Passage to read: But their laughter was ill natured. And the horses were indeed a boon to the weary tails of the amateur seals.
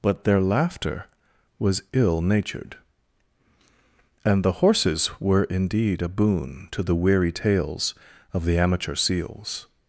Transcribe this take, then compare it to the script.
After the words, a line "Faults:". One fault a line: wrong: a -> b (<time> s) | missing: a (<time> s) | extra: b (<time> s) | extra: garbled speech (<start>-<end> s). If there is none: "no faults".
But their laughter was ill natured. And the horses were indeed a boon to the weary tails of the amateur seals.
Faults:
no faults